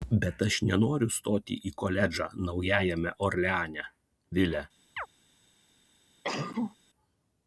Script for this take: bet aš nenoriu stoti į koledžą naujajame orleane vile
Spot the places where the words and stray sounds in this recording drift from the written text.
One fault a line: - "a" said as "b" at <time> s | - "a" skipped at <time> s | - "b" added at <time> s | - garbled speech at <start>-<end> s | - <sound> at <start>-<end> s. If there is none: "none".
- chirp at 5.0-5.1 s
- cough at 6.2-6.8 s